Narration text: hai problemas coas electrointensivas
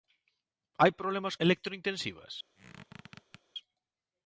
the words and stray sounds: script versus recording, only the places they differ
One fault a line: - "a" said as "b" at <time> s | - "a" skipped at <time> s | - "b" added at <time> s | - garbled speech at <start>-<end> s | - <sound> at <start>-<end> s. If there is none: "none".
- "coas" skipped at 1.4 s
- squeak at 2.6-3.4 s